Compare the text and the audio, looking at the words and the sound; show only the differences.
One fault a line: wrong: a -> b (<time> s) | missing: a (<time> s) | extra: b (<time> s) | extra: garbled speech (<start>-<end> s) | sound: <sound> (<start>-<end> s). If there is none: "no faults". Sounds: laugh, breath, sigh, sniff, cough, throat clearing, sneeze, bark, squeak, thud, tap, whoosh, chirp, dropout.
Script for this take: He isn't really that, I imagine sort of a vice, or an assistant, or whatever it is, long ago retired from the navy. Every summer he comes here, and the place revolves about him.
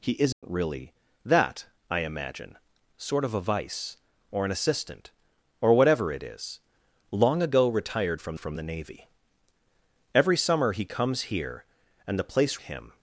sound: dropout (0.3-0.4 s)
extra: from (8.4 s)
missing: revolves about (12.6 s)